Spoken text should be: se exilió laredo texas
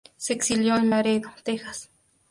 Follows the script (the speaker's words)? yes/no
no